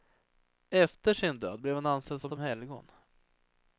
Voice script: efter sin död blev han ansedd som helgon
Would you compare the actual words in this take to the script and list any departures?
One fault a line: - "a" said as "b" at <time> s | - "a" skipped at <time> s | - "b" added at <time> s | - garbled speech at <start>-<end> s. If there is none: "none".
- "som" added at 2.3 s